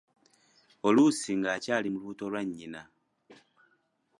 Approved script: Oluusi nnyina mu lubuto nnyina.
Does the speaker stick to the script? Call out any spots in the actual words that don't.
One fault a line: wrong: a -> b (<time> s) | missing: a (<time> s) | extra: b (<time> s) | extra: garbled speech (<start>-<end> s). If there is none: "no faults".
wrong: nnyina -> ng'akyali (1.4 s)
extra: lwa (2.3 s)